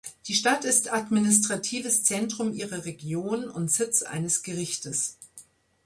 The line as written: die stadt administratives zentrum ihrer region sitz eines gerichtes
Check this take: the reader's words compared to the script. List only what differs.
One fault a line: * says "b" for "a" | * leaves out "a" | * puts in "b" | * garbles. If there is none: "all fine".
* puts in "ist"
* puts in "und"